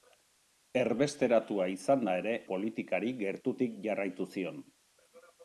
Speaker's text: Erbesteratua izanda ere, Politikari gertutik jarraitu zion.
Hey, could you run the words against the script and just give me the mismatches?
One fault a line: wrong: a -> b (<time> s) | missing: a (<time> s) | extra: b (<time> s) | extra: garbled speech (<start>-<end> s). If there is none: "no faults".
no faults